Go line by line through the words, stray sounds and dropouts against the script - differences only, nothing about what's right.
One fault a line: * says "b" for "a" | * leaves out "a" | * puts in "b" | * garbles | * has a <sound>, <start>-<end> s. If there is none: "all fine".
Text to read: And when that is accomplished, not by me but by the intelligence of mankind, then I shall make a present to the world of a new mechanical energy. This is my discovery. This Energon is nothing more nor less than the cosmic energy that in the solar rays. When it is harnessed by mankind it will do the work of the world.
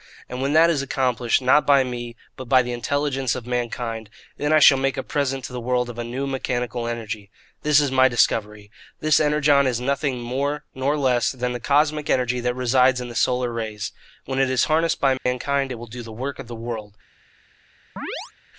* puts in "resides"
* has a dropout, 15.2-15.3 s
* has a chirp, 18.0-18.3 s